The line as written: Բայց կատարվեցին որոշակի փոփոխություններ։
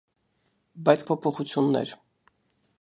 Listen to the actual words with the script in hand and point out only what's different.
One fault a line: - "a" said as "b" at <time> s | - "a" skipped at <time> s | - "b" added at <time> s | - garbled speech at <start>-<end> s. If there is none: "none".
- "կատարվեցին որոշակի" skipped at 1.0 s